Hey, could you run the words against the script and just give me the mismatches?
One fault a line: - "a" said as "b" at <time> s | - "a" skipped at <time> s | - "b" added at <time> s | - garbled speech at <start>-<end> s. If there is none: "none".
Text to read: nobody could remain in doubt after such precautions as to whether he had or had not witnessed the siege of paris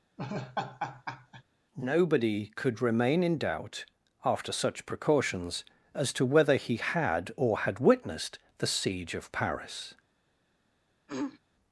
- "not" skipped at 7.8 s